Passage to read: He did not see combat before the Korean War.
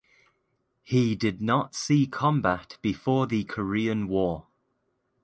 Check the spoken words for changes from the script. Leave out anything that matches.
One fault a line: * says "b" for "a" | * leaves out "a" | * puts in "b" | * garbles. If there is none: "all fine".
all fine